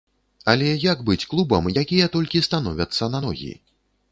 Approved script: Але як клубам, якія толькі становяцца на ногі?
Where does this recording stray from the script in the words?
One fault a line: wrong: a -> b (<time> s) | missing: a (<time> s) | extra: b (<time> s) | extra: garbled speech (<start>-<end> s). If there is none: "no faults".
extra: быць (1.1 s)